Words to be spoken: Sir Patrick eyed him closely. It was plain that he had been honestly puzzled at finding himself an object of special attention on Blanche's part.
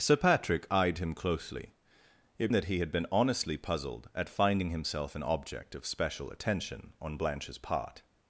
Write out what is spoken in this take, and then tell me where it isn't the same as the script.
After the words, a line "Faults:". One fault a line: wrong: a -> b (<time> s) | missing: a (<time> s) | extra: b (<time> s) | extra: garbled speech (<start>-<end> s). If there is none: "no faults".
Sir Patrick eyed him closely. It that he had been honestly puzzled at finding himself an object of special attention on Blanche's part.
Faults:
missing: was plain (2.5 s)